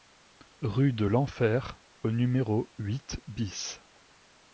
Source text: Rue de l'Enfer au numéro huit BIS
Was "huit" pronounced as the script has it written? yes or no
yes